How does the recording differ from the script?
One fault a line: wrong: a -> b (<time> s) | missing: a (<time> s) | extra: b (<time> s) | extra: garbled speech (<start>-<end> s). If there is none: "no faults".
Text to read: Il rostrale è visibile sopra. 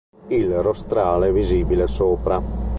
no faults